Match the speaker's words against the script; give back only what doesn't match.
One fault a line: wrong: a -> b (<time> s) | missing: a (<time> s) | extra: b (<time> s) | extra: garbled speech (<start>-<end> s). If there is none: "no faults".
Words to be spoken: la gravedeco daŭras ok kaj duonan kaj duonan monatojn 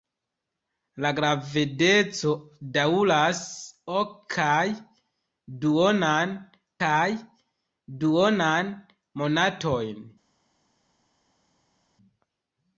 no faults